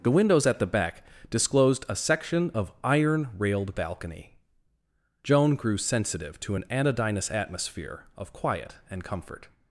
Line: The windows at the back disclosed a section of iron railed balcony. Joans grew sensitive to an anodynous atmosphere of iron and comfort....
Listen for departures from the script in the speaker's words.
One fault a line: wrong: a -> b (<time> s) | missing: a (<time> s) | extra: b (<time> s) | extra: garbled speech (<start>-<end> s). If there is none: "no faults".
wrong: Joans -> Joan (5.2 s)
wrong: iron -> quiet (8.3 s)